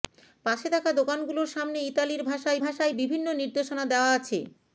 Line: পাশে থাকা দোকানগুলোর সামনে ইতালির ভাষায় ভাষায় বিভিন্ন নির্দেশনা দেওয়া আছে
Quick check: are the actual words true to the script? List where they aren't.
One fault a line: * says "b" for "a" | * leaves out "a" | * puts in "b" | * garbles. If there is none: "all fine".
all fine